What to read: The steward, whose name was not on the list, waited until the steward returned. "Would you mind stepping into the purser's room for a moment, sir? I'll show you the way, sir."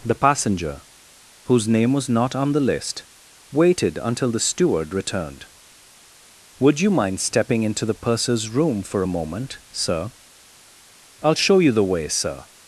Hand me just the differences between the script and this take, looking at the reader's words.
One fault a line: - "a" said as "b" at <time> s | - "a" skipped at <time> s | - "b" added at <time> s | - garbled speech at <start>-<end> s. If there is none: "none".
- "steward" said as "passenger" at 0.1 s